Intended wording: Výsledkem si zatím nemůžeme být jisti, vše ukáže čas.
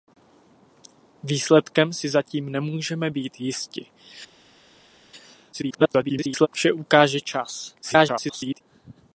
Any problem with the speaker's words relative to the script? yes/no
yes